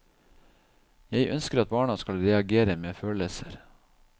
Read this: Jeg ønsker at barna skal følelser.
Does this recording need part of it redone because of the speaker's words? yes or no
yes